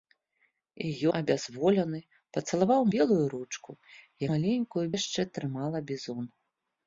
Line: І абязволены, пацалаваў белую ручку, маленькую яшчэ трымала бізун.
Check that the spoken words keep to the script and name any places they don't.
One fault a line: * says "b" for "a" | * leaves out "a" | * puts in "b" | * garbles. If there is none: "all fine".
all fine